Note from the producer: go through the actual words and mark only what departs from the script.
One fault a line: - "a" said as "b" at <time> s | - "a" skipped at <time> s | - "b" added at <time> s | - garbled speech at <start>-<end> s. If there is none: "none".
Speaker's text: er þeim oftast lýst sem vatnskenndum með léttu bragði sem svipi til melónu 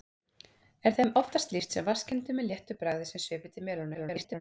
- garbled speech at 3.9-4.4 s